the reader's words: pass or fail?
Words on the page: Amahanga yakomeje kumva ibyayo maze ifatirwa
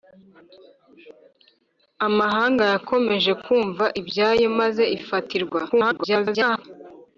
fail